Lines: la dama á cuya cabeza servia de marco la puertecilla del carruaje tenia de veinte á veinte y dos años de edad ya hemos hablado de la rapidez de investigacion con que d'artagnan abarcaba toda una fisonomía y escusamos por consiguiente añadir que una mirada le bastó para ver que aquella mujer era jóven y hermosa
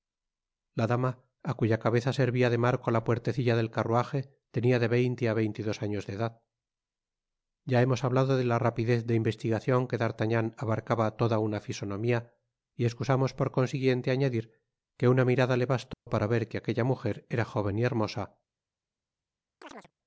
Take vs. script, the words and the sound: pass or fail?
fail